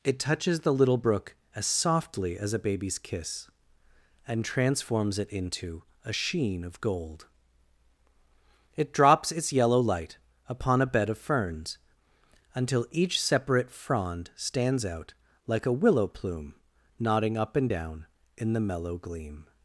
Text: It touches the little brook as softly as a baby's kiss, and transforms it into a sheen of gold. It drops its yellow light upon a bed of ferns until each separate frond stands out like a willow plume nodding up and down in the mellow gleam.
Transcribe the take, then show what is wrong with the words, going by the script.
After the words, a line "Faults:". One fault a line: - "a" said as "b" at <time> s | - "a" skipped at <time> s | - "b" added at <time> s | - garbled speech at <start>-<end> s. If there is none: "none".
It touches the little brook as softly as a baby's kiss, and transforms it into a sheen of gold. It drops its yellow light upon a bed of ferns until each separate frond stands out like a willow plume nodding up and down in the mellow gleam.
Faults:
none